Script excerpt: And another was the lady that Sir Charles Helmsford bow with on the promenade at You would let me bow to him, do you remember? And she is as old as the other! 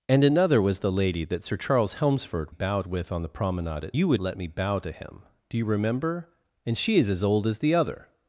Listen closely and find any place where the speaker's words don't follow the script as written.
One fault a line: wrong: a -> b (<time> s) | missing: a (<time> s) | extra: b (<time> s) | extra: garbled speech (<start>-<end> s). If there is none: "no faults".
no faults